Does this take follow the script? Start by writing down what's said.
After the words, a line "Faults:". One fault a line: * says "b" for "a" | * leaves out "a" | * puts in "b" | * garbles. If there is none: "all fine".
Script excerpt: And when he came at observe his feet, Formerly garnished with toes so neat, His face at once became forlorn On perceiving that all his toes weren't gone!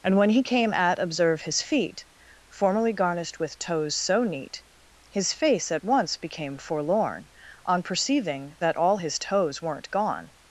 And when he came at observe his feet, Formerly garnished with toes so neat, His face at once became forlorn On perceiving that all his toes weren't gone!
Faults:
all fine